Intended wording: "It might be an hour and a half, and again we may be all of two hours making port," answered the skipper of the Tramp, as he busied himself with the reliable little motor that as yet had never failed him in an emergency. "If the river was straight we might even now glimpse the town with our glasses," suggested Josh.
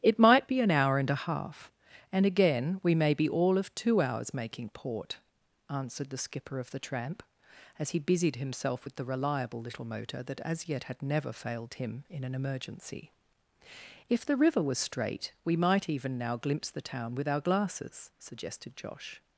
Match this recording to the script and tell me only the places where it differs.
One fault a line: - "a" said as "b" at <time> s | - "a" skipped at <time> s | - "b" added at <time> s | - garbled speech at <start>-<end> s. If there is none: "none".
none